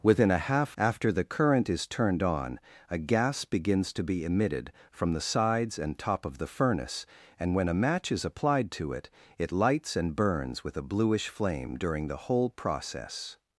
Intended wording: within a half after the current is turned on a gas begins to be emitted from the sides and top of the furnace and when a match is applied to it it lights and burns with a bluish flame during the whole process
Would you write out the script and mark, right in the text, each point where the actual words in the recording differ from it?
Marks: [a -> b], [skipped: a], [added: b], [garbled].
within a half after the current is turned on a gas begins to be emitted from the sides and top of the furnace and when a match is applied to it it lights and burns with a bluish flame during the whole process